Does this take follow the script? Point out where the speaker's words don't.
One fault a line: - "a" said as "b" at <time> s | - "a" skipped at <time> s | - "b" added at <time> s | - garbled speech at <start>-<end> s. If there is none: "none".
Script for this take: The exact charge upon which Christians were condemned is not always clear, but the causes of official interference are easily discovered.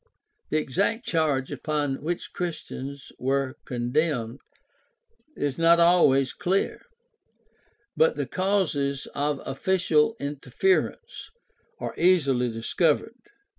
none